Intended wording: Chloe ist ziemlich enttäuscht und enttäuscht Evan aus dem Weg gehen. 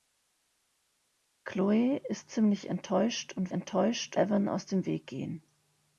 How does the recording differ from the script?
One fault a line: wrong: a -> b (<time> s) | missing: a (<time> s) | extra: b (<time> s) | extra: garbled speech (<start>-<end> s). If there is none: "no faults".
no faults